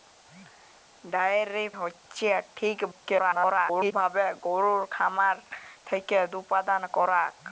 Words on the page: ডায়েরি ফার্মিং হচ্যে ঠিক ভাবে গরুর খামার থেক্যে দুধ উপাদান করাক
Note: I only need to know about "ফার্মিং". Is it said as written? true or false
false